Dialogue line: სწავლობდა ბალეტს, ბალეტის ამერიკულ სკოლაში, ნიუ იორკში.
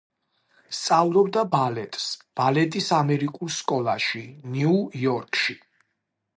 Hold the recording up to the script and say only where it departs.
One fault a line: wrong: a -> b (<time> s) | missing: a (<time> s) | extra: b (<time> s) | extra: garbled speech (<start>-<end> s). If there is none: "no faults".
no faults